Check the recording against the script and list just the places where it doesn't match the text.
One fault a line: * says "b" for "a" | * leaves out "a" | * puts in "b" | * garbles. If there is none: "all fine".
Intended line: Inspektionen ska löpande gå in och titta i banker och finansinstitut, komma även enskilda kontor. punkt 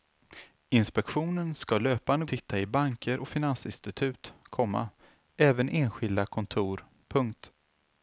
* leaves out "gå in och"